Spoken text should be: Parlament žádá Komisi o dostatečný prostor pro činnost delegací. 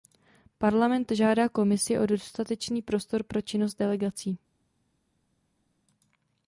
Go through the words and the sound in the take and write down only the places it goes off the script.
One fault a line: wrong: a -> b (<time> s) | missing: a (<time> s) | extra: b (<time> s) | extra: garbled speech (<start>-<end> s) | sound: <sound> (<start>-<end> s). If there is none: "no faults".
no faults